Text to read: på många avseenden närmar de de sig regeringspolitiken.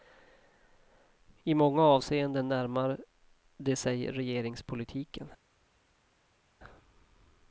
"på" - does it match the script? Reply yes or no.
no